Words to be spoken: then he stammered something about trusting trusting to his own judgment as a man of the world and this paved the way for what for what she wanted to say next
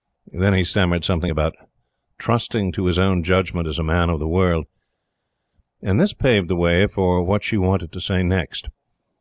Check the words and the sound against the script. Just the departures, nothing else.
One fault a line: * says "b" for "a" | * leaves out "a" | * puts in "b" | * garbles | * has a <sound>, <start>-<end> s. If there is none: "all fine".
* leaves out "trusting"
* leaves out "for what"